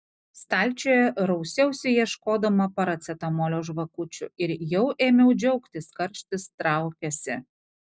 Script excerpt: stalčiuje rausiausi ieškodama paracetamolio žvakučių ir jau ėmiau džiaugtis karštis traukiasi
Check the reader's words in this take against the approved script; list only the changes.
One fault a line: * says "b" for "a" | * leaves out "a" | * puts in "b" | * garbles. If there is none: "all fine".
all fine